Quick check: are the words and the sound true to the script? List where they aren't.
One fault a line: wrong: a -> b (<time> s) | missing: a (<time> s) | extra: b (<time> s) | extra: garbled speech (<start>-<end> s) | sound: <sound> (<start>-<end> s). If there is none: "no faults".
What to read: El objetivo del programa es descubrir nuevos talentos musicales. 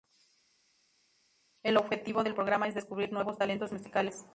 no faults